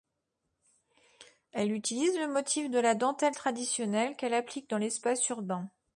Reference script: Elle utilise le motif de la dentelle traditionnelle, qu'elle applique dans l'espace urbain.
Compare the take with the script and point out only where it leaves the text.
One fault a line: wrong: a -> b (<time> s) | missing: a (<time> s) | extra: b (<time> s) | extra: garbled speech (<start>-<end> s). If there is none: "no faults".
no faults